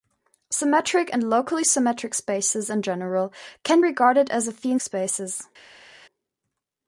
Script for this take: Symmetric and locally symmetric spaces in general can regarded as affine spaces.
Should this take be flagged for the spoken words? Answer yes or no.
no